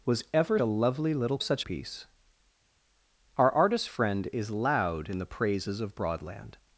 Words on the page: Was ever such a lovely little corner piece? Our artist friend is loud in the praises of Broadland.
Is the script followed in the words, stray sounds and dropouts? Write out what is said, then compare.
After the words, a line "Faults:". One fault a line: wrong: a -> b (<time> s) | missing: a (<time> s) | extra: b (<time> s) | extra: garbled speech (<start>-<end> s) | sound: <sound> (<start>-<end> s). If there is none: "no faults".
Was ever a lovely little such piece? Our artist friend is loud in the praises of Broadland.
Faults:
missing: such (0.6 s)
wrong: corner -> such (1.4 s)